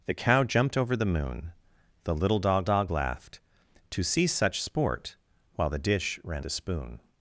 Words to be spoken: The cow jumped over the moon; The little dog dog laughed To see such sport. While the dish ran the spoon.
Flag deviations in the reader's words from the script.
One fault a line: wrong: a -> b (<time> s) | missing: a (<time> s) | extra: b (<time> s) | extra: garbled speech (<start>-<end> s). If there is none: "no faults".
no faults